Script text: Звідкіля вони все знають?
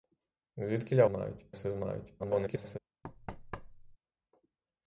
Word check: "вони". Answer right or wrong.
wrong